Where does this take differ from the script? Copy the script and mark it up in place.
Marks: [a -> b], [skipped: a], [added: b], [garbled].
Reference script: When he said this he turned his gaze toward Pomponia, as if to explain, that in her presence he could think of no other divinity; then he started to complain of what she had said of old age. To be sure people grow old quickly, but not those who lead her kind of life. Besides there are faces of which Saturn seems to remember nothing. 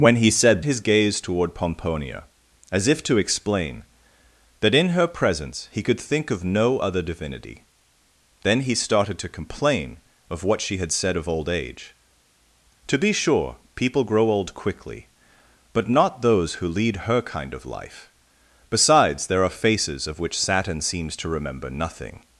When he said [skipped: this he turned] his gaze toward Pomponia, as if to explain, that in her presence he could think of no other divinity; then he started to complain of what she had said of old age. To be sure people grow old quickly, but not those who lead her kind of life. Besides there are faces of which Saturn seems to remember nothing.